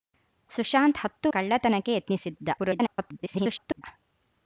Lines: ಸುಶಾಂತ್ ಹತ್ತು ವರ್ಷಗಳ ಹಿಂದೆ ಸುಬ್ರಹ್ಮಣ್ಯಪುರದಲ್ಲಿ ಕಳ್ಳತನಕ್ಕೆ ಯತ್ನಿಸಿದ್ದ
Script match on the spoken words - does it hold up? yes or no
no